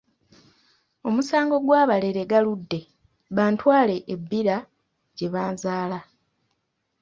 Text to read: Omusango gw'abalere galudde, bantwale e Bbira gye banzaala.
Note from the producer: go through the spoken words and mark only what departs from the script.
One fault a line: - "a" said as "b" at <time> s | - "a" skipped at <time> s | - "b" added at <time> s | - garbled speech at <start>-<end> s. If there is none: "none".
none